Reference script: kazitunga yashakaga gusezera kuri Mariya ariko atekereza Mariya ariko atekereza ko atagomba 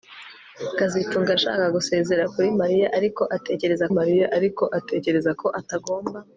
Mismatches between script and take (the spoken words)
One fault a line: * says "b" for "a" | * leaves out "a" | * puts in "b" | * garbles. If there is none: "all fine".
all fine